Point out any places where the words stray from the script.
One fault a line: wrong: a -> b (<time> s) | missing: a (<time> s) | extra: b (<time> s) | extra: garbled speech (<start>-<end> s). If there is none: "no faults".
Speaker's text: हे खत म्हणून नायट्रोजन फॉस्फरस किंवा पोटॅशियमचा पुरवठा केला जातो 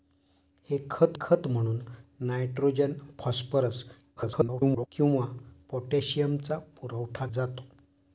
extra: खत (1.2 s)
extra: garbled speech (4.2-4.9 s)
missing: केला (7.3 s)